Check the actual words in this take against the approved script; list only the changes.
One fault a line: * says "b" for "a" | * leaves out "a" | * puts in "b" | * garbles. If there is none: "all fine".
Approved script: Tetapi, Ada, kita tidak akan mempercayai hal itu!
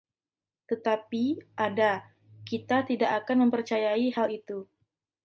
all fine